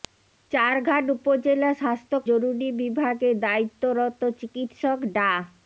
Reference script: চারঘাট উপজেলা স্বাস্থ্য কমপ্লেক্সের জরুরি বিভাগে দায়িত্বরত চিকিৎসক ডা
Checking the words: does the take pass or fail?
fail